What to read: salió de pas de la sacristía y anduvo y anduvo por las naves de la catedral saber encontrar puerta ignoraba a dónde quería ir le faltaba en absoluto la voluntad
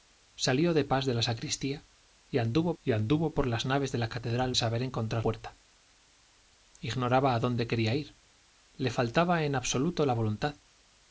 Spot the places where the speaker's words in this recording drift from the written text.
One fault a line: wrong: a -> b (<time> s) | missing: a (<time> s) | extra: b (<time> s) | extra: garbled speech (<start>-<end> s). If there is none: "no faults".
no faults